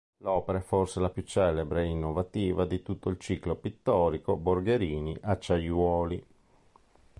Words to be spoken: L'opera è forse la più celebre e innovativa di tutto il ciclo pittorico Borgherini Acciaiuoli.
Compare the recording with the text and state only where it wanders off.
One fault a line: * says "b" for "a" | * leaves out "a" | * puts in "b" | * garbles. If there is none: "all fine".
all fine